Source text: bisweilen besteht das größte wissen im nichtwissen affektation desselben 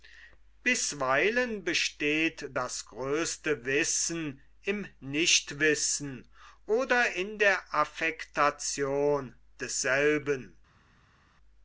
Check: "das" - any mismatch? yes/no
no